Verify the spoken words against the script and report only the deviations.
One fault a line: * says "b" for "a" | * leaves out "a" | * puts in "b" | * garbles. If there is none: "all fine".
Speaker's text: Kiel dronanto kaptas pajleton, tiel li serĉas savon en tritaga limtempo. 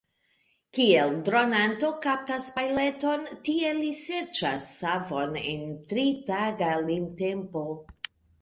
all fine